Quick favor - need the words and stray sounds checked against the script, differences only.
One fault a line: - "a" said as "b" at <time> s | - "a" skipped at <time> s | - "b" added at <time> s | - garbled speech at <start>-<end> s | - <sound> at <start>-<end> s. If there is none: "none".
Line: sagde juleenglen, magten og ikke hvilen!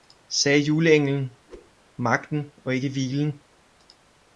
- whoosh at 1.5-1.7 s